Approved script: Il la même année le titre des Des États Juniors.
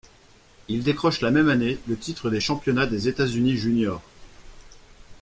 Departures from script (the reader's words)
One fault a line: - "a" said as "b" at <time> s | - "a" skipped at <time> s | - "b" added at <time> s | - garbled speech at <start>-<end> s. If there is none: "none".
- "décroche" added at 0.8 s
- "Championnats" added at 2.4 s
- "Unis" added at 3.3 s